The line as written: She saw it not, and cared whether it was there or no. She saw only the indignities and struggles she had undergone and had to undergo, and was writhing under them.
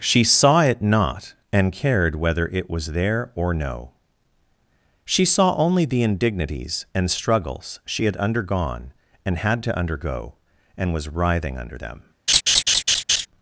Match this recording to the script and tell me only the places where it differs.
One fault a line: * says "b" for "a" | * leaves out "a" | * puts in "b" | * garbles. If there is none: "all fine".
all fine